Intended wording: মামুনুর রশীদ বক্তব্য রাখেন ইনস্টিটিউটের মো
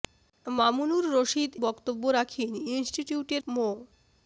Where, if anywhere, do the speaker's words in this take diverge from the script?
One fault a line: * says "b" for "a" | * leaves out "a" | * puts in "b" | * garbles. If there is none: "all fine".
all fine